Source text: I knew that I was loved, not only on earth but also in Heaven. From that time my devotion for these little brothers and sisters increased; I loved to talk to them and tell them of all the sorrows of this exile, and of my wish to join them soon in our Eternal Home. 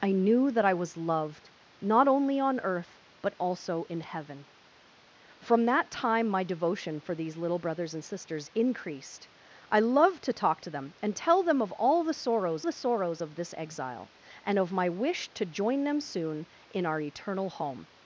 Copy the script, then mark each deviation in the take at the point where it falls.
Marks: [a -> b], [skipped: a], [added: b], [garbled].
I knew that I was loved, not only on earth but also in Heaven. From that time my devotion for these little brothers and sisters increased; I loved to talk to them and tell them of all the sorrows [added: the sorrows] of this exile, and of my wish to join them soon in our Eternal Home.